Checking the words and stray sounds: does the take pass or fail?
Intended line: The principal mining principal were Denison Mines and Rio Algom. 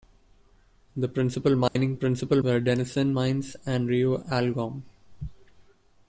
fail